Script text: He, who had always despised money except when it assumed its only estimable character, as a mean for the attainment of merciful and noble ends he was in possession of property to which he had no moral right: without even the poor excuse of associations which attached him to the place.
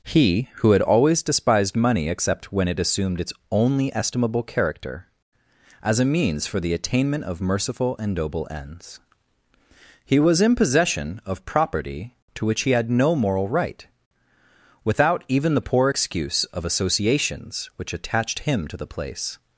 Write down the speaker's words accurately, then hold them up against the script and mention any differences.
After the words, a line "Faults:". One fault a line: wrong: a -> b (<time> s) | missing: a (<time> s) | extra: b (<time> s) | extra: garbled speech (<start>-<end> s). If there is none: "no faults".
He, who had always despised money except when it assumed its only estimable character, as a means for the attainment of merciful and noble ends he was in possession of property to which he had no moral right: without even the poor excuse of associations which attached him to the place.
Faults:
wrong: mean -> means (6.0 s)